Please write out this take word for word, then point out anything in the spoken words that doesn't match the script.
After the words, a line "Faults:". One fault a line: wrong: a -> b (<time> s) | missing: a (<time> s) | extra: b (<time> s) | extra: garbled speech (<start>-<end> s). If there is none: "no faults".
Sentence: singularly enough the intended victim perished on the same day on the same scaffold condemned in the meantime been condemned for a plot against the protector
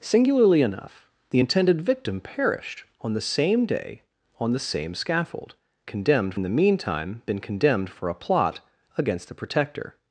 singularly enough the intended victim perished on the same day on the same scaffold condemned in the meantime been condemned for a plot against the protector
Faults:
no faults